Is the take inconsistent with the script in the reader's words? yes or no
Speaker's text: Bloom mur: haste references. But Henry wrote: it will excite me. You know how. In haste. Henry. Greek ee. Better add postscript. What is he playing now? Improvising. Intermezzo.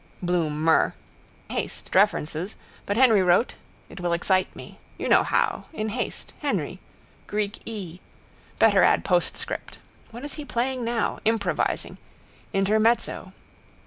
no